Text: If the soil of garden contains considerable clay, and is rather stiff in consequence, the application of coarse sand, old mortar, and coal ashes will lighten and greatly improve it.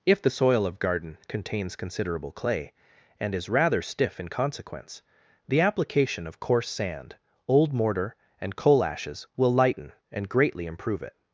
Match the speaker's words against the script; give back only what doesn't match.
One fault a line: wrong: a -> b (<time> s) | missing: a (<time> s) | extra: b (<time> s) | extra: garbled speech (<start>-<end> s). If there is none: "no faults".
no faults